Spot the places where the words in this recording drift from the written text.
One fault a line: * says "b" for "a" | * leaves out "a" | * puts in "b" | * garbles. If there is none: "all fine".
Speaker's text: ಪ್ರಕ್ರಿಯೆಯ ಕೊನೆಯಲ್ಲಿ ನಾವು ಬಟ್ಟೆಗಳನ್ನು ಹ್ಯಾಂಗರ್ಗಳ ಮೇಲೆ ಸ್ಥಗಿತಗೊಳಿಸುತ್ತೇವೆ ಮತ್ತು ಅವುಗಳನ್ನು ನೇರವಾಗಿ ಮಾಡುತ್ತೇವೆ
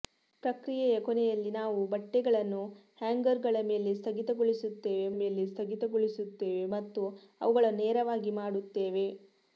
* puts in "ಮೇಲೆ ಸ್ಥಗಿತಗೊಳಿಸುತ್ತೇವೆ"